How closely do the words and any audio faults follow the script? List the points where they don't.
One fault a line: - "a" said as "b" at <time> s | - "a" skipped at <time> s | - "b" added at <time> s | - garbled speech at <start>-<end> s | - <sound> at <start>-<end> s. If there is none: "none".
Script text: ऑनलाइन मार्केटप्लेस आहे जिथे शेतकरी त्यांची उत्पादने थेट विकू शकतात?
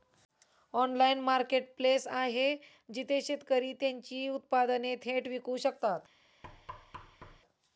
- thud at 6.4-7.4 s